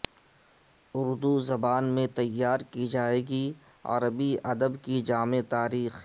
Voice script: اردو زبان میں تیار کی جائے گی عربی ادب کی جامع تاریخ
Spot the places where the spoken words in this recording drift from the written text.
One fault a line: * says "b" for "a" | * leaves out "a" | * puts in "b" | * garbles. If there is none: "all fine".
all fine